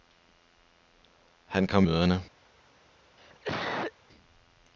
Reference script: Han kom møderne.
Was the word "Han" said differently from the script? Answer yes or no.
no